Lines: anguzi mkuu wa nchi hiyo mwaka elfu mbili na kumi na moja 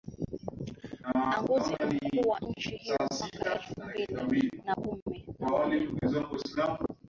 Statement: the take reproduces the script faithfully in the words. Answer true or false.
true